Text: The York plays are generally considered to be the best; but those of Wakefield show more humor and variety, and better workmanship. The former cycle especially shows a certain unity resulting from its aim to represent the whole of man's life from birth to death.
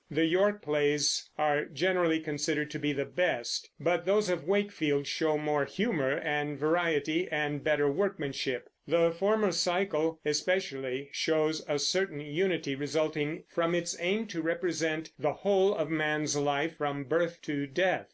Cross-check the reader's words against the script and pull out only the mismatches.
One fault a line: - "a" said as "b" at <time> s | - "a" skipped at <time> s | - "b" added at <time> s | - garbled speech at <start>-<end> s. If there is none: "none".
none